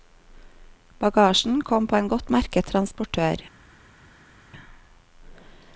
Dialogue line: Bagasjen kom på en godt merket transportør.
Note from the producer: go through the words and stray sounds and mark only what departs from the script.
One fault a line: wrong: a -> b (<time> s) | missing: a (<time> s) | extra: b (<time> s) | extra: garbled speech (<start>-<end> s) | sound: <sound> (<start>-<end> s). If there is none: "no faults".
no faults